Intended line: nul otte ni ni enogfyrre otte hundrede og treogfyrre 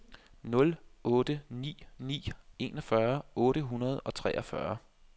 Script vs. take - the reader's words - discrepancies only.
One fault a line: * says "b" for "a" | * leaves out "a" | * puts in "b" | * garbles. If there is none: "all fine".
all fine